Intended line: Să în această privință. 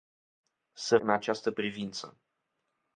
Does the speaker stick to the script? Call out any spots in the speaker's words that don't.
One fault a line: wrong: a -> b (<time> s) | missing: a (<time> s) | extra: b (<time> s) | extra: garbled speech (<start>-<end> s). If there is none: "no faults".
no faults